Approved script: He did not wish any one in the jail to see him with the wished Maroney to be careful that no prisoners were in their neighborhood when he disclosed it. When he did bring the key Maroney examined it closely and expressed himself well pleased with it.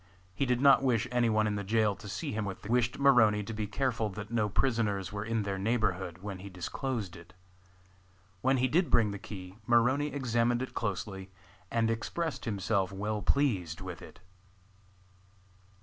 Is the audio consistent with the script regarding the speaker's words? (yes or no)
yes